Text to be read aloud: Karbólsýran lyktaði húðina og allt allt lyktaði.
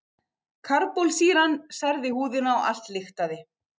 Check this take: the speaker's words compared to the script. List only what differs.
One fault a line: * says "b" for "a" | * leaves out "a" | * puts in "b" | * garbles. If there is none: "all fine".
* says "særði" for "lyktaði"
* leaves out "allt"